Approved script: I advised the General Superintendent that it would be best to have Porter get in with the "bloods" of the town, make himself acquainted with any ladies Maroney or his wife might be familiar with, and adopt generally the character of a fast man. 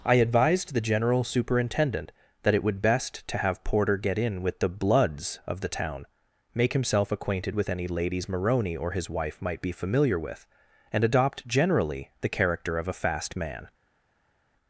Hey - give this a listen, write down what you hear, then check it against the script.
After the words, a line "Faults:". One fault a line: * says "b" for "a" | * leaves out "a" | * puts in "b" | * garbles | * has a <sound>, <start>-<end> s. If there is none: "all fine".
I advised the General Superintendent that it would best to have Porter get in with the "bloods" of the town, make himself acquainted with any ladies Maroney or his wife might be familiar with, and adopt generally the character of a fast man.
Faults:
* leaves out "be"